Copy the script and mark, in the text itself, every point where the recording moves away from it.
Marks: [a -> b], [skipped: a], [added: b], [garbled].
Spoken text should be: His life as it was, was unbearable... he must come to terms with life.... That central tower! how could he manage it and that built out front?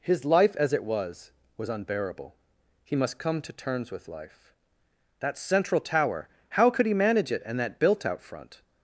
His life as it was, was unbearable... he must come to terms with life.... That central tower! how could he manage it and that built out front?